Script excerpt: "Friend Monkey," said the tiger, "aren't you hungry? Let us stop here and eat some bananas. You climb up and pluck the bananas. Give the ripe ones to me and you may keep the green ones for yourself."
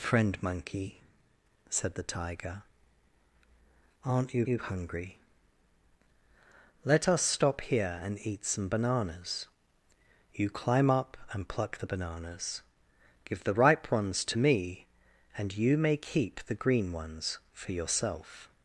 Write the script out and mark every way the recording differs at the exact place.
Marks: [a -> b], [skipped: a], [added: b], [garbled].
"Friend Monkey," said the tiger, "aren't you [added: you] hungry? Let us stop here and eat some bananas. You climb up and pluck the bananas. Give the ripe ones to me and you may keep the green ones for yourself."